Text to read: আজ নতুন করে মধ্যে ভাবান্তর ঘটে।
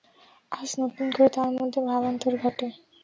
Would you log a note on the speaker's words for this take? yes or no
yes